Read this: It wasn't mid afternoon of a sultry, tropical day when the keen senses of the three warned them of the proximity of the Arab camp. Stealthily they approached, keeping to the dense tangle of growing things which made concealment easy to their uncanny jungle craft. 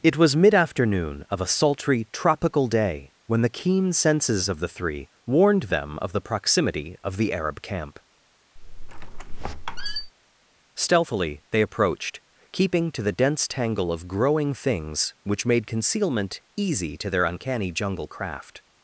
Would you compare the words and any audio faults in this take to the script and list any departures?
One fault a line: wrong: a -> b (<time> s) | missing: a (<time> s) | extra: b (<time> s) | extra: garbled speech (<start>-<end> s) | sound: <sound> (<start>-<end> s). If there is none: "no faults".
wrong: wasn't -> was (0.2 s)
sound: squeak (8.6-10.1 s)